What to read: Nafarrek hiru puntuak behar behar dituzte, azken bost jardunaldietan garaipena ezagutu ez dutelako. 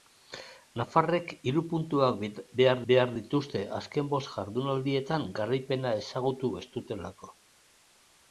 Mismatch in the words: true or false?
false